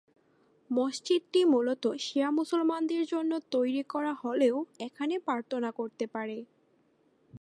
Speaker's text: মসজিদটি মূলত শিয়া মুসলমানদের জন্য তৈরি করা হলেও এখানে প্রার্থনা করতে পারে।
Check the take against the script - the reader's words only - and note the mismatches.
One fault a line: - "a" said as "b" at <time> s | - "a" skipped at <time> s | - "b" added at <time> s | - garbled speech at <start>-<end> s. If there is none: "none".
none